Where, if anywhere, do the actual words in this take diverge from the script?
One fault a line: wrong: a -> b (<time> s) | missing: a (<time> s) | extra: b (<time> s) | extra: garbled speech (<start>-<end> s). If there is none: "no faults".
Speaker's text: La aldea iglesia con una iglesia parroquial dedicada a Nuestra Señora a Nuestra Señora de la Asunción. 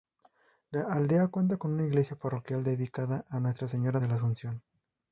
wrong: iglesia -> cuenta (1.3 s)
missing: a Nuestra Señora (4.0 s)